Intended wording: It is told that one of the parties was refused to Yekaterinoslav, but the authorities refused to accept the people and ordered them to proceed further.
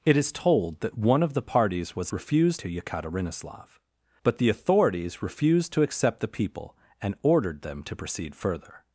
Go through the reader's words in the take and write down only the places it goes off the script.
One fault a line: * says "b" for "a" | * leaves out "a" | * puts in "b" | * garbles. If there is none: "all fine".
all fine